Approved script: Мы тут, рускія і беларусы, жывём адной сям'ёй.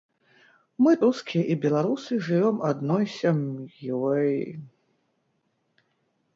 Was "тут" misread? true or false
true